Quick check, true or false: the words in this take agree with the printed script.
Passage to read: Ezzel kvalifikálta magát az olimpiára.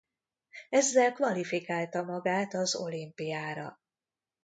true